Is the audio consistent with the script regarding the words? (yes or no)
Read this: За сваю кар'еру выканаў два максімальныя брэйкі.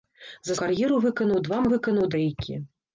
no